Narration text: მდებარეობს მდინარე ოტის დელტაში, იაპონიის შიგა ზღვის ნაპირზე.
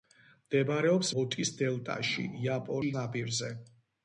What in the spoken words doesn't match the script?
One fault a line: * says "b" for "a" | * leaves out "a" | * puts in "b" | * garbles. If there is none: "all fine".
* leaves out "მდინარე"
* leaves out "შიგა ზღვის"